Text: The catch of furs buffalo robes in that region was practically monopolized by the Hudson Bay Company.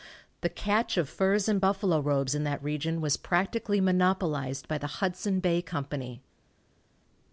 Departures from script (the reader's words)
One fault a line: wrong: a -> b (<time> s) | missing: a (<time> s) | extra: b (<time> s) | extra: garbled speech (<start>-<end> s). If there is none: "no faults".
extra: and (1.5 s)